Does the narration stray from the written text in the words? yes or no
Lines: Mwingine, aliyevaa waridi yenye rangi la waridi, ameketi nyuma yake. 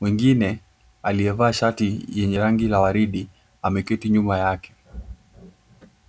yes